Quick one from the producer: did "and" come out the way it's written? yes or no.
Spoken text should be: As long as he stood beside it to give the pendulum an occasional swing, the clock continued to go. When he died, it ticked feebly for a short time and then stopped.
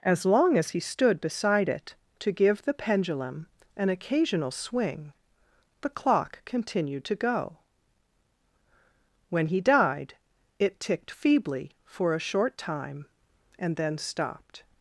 yes